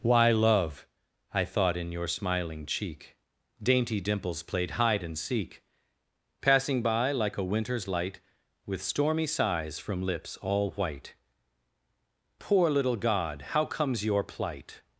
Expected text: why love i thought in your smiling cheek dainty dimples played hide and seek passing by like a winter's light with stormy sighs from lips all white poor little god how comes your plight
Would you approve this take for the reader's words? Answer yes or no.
yes